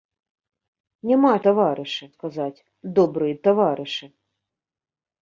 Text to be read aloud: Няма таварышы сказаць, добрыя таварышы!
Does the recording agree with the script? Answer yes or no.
yes